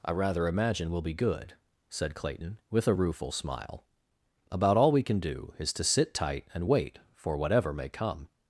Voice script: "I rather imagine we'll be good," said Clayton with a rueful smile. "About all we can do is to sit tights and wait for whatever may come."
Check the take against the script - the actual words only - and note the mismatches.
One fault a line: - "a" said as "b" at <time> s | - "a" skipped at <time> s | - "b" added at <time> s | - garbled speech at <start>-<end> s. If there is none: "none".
- "tights" said as "tight" at 6.1 s